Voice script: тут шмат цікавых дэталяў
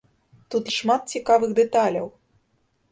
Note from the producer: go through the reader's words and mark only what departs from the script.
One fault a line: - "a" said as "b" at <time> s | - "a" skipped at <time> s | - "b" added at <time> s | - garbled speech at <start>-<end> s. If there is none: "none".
none